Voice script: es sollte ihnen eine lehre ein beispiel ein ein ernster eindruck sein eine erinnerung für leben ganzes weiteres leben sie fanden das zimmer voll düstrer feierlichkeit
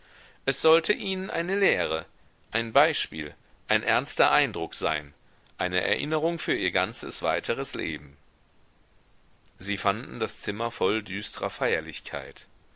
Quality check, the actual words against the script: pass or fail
fail